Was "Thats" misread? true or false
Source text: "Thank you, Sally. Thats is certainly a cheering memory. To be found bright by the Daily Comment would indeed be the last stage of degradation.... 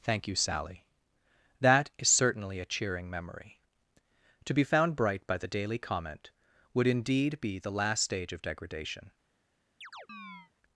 true